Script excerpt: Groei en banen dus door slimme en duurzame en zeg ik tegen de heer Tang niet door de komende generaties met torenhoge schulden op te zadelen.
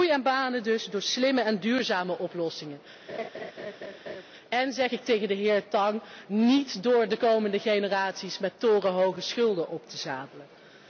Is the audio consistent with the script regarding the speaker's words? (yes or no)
no